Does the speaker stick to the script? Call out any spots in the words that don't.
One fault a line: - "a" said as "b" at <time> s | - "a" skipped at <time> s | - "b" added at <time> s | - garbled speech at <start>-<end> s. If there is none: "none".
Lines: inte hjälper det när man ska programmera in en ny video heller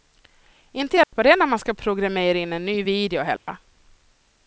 none